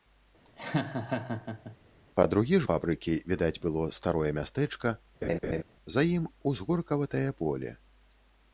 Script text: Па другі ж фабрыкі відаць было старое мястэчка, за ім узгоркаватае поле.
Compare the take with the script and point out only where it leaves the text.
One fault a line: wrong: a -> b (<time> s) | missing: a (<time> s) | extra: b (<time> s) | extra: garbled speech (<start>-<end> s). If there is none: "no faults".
no faults